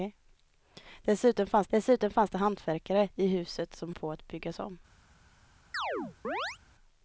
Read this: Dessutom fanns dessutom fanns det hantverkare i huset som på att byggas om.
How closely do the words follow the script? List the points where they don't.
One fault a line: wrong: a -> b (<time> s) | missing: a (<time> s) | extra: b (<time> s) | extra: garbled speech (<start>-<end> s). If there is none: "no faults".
no faults